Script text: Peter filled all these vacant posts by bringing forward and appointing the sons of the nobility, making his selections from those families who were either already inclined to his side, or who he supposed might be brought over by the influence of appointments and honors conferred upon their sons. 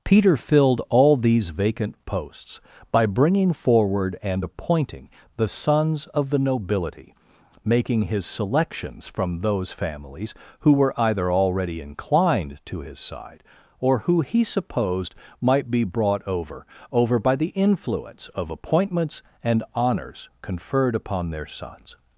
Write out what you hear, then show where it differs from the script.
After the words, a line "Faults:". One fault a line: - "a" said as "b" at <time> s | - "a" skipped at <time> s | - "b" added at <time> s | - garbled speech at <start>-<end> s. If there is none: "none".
Peter filled all these vacant posts by bringing forward and appointing the sons of the nobility, making his selections from those families who were either already inclined to his side, or who he supposed might be brought over over by the influence of appointments and honors conferred upon their sons.
Faults:
- "over" added at 16.9 s